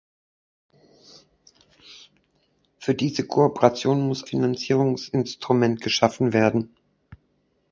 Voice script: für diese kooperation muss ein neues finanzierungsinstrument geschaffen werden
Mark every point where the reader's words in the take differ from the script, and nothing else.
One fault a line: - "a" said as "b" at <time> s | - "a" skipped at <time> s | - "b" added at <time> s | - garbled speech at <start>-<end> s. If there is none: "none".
- "ein neues" skipped at 4.3 s